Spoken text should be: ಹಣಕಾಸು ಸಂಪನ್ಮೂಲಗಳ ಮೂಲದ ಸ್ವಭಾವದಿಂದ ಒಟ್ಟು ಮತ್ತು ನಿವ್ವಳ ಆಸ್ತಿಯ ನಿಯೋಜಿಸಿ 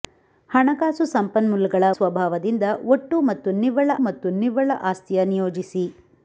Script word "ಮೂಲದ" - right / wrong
wrong